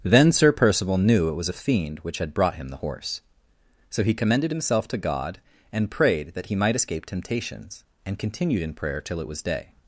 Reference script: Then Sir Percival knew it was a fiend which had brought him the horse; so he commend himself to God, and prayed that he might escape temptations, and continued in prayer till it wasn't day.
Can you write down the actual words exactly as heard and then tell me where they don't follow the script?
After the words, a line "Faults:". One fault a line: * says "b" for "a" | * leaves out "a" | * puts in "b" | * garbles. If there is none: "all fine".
Then Sir Percival knew it was a fiend which had brought him the horse; so he commended himself to God, and prayed that he might escape temptations, and continued in prayer till it was day.
Faults:
* says "commended" for "commend"
* says "was" for "wasn't"